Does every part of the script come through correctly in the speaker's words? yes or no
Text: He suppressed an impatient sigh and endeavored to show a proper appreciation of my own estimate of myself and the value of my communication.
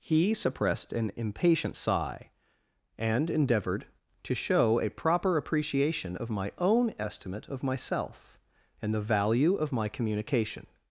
yes